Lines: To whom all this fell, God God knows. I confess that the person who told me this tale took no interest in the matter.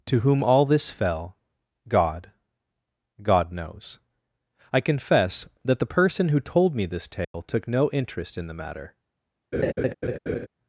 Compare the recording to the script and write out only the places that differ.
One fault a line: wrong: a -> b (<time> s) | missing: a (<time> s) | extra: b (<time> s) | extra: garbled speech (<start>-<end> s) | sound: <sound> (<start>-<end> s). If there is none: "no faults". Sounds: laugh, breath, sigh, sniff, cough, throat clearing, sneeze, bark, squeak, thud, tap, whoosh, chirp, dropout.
sound: dropout (7.2-7.3 s)
sound: laugh (9.5-10.5 s)